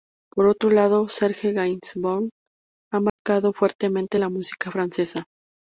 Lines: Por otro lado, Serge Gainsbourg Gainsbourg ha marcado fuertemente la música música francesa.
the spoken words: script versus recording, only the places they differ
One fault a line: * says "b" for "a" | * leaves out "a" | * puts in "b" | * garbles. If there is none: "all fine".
* leaves out "Gainsbourg"
* leaves out "música"